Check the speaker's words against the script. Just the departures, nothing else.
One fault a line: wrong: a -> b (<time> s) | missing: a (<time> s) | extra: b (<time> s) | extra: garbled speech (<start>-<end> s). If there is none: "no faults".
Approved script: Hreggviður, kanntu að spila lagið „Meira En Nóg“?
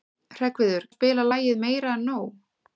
missing: kanntu (0.9 s)